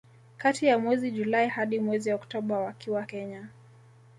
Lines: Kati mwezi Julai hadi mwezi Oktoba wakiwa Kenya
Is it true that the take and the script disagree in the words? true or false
true